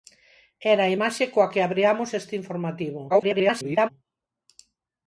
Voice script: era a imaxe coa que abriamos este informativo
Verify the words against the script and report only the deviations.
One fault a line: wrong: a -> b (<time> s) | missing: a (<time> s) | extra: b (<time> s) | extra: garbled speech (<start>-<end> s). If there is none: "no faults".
extra: garbled speech (3.1-3.9 s)